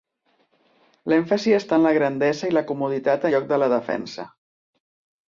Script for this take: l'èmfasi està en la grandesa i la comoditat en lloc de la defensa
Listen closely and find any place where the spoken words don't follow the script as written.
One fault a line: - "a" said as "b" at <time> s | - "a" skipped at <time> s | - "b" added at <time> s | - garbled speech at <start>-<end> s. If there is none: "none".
- "en" skipped at 3.3 s